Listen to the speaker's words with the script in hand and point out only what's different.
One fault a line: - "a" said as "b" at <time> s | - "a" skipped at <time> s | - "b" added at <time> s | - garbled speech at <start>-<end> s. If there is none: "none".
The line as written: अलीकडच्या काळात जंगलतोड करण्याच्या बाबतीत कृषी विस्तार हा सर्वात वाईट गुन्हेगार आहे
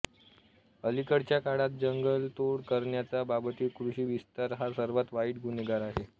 none